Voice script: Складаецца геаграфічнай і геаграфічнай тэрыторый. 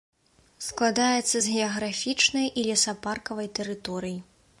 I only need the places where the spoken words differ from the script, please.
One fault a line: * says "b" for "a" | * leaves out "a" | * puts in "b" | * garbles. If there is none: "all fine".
* puts in "з"
* says "лесапаркавай" for "геаграфічнай"